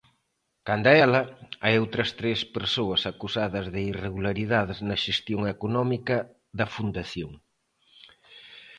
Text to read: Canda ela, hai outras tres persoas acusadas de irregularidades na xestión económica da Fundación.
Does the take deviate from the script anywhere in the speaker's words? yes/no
no